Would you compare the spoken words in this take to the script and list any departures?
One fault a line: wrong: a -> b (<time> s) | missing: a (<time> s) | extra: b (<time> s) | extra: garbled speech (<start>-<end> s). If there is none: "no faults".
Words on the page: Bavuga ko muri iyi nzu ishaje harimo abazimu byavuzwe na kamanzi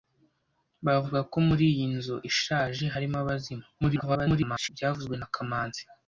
extra: garbled speech (3.8-4.7 s)